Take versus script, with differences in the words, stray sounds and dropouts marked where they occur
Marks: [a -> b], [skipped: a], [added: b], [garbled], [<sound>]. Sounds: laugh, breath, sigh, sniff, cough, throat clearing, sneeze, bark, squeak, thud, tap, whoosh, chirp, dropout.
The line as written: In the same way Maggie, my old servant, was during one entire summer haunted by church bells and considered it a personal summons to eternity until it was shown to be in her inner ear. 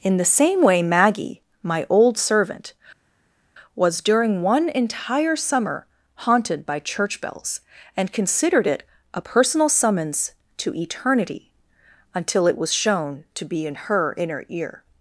In the same way Maggie, my old servant, was during one entire summer haunted by church bells and considered it a personal summons to eternity until it was shown to be in her inner ear.